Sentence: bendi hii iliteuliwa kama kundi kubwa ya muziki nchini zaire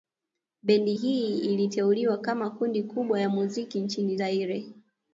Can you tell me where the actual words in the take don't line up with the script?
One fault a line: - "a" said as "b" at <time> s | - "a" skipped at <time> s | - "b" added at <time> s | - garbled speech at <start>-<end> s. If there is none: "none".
none